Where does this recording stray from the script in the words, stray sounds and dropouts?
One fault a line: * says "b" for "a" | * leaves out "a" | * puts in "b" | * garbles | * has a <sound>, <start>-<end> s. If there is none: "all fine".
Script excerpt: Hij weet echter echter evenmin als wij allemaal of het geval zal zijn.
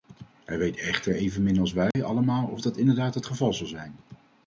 * leaves out "echter"
* has a dropout, 1.9-1.9 s
* puts in "dat inderdaad"